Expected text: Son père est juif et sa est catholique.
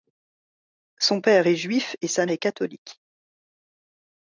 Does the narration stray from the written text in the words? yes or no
no